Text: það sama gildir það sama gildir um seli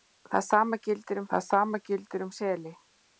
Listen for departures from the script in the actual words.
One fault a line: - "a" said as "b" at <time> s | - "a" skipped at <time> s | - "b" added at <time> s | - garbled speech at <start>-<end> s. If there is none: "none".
none